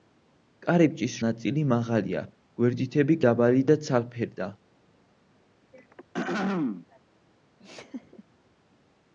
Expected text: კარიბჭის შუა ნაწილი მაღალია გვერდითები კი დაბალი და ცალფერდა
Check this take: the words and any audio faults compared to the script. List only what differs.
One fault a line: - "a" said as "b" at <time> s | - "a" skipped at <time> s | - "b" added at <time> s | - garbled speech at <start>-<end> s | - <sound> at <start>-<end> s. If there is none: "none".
- "შუა" skipped at 1.2 s
- "კი" skipped at 3.2 s
- throat clearing at 5.7-7.0 s
- laugh at 7.6-8.2 s